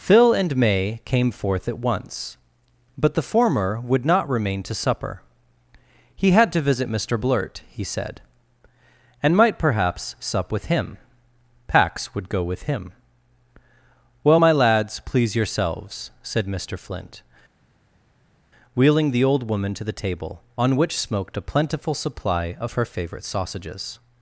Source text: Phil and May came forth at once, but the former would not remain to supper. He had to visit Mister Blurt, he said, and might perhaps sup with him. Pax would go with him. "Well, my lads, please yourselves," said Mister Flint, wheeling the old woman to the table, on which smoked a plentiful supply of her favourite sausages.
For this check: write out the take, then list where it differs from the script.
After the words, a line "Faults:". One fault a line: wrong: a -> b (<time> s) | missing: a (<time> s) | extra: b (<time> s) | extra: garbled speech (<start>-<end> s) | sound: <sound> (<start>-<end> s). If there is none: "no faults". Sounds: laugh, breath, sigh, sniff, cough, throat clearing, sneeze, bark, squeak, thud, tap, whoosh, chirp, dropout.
Phil and May came forth at once, but the former would not remain to supper. He had to visit Mister Blurt, he said, and might perhaps sup with him. Pax would go with him. "Well, my lads, please yourselves," said Mister Flint, wheeling the old woman to the table, on which smoked a plentiful supply of her favourite sausages.
Faults:
no faults